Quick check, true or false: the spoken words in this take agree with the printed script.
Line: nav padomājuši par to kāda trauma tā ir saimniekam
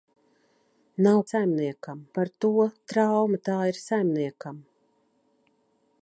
false